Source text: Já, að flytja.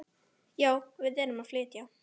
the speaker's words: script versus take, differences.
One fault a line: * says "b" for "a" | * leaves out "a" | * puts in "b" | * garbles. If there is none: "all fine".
* puts in "við erum"